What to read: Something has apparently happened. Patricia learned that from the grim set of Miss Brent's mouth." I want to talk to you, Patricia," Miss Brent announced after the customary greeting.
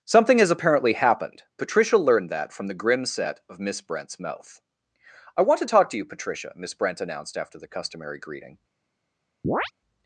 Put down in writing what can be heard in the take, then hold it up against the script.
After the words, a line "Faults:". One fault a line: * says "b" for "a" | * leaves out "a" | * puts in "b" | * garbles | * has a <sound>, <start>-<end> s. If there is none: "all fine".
Something has apparently happened. Patricia learned that from the grim set of Miss Brent's mouth." I want to talk to you, Patricia," Miss Brent announced after the customary greeting.
Faults:
* has a chirp, 9.4-9.7 s